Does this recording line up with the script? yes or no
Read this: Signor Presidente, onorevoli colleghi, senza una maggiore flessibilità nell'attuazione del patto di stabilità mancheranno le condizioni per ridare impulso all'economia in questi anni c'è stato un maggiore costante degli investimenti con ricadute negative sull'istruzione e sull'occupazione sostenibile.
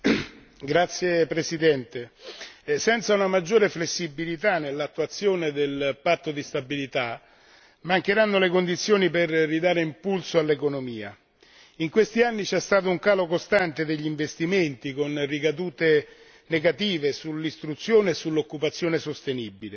no